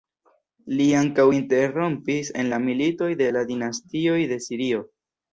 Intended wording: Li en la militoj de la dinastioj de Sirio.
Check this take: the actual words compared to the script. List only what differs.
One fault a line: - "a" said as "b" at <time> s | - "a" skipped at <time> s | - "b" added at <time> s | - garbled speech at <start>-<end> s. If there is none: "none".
- "ankaŭ interrompis" added at 1.0 s